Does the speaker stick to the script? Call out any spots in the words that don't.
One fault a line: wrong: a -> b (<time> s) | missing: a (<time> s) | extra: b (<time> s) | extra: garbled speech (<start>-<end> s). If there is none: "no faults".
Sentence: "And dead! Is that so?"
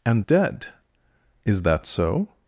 no faults